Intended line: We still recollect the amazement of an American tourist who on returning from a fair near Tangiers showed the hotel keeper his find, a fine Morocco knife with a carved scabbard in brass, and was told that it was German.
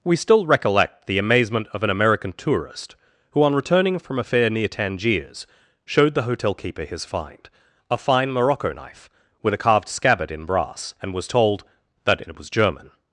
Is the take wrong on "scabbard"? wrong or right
right